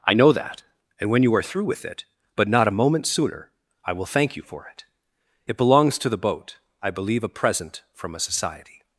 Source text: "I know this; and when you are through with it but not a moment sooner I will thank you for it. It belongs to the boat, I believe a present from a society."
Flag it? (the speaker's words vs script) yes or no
yes